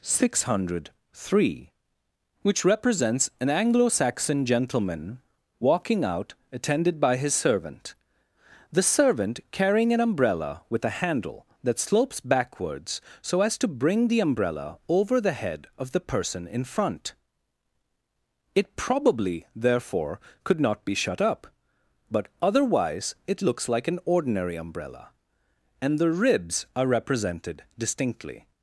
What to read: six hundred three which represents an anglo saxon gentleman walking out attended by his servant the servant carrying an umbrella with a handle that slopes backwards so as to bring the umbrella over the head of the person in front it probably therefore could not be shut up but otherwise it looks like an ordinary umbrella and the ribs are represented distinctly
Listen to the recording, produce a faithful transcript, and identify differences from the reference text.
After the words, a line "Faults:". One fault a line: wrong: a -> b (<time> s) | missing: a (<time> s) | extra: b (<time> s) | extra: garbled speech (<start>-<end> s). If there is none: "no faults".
six hundred three which represents an anglo saxon gentleman walking out attended by his servant the servant carrying an umbrella with a handle that slopes backwards so as to bring the umbrella over the head of the person in front it probably therefore could not be shut up but otherwise it looks like an ordinary umbrella and the ribs are represented distinctly
Faults:
no faults